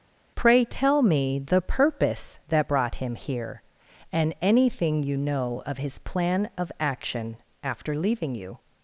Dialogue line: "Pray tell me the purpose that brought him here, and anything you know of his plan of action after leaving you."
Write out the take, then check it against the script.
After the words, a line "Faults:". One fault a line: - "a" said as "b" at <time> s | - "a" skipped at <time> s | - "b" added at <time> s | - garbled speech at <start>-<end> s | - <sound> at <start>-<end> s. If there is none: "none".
"Pray tell me the purpose that brought him here, and anything you know of his plan of action after leaving you."
Faults:
none